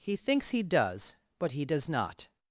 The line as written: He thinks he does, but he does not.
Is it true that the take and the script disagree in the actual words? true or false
false